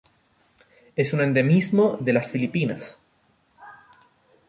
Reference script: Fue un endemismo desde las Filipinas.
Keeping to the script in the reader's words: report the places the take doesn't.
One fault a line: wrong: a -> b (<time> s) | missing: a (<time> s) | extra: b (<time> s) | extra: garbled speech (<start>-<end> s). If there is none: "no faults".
wrong: Fue -> Es (0.9 s)
wrong: desde -> de (2.0 s)